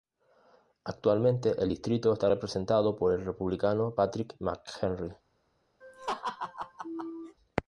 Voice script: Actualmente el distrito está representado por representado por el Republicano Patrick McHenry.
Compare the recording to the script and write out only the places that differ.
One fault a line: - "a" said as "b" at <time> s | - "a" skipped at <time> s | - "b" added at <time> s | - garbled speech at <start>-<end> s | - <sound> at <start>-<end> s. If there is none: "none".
- "representado por" skipped at 3.1 s
- laugh at 5.8-7.4 s